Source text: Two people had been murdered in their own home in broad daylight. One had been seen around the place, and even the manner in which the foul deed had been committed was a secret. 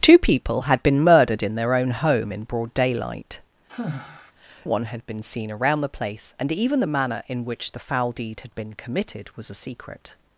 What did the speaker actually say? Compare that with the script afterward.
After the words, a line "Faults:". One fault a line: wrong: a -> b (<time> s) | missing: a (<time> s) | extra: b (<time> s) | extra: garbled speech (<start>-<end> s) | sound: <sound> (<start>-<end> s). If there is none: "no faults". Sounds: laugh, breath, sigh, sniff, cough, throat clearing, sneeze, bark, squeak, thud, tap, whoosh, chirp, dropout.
Two people had been murdered in their own home in broad daylight. One had been seen around the place, and even the manner in which the foul deed had been committed was a secret.
Faults:
sound: sigh (3.7-4.3 s)